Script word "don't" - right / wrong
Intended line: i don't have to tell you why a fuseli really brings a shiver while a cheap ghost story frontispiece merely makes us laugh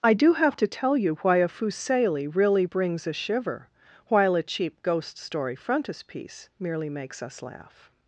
wrong